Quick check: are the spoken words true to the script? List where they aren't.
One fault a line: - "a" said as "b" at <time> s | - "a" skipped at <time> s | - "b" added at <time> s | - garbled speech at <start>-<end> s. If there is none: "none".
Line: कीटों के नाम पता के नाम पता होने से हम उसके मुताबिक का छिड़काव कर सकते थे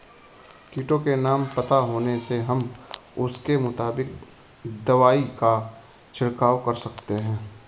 - "के नाम पता" skipped at 1.8 s
- "दवाई" added at 4.8 s
- "थे" said as "हैं" at 7.1 s